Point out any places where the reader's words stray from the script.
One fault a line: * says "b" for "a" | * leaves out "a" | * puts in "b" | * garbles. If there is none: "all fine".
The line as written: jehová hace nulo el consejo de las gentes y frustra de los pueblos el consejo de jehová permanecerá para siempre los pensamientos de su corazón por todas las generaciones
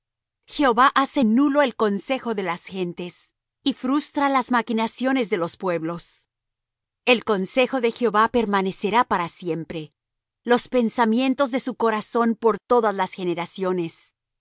* puts in "las maquinaciones"